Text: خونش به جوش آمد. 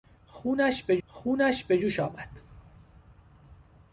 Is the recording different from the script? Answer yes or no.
yes